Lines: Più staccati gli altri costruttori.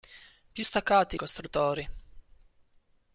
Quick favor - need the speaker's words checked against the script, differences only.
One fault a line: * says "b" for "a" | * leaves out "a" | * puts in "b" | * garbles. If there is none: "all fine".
* leaves out "gli altri"